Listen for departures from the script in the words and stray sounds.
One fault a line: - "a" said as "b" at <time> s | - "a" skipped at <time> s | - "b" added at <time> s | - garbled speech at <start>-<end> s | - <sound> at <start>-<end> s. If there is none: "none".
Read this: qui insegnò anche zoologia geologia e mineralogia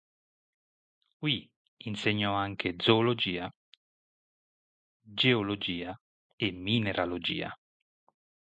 none